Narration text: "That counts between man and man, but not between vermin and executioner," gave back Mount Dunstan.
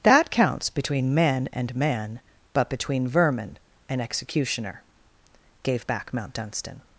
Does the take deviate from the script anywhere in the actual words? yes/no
yes